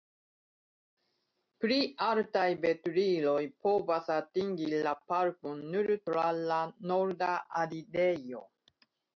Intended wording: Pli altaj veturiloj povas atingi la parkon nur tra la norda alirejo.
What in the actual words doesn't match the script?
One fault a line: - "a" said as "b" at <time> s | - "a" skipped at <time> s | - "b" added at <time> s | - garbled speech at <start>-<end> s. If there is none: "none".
none